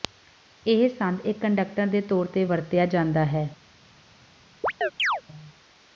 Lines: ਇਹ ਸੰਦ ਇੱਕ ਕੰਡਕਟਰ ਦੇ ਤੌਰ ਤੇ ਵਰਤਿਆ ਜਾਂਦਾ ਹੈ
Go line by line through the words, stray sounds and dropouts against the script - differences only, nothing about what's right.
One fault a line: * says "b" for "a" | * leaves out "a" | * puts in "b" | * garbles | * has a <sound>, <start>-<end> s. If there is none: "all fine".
* has a chirp, 4.6-5.2 s